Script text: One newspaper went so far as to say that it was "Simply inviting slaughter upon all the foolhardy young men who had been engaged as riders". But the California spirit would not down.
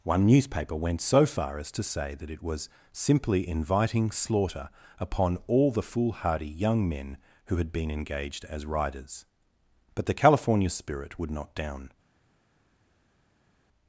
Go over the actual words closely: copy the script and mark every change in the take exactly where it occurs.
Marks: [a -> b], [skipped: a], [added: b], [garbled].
One newspaper went so far as to say that it was "Simply inviting slaughter upon all the foolhardy young men who had been engaged as riders". But the California spirit would not down.